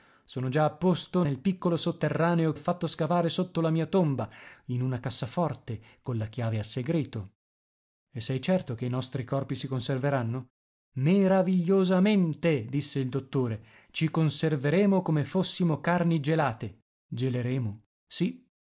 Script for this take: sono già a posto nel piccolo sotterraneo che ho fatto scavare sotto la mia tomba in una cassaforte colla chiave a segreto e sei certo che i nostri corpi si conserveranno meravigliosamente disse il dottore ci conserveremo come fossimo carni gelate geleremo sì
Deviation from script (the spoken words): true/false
true